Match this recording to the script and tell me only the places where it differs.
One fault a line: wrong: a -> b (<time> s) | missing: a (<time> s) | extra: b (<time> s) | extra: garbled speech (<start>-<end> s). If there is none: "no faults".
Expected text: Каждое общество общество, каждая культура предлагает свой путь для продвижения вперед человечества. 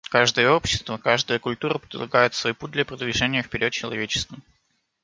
missing: общество (1.0 s)